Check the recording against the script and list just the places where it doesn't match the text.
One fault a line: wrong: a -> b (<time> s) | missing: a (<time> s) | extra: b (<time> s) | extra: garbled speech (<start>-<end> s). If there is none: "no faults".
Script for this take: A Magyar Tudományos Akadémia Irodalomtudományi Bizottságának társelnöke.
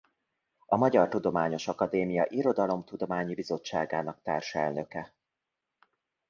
no faults